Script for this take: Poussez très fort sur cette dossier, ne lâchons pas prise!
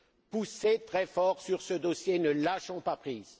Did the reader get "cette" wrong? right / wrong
wrong